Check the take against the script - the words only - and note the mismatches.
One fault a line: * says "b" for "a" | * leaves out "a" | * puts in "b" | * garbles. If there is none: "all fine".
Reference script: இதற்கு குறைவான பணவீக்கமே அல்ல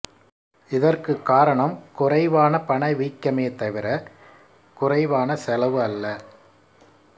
* puts in "காரணம்"
* puts in "தவிர குறைவான செலவு"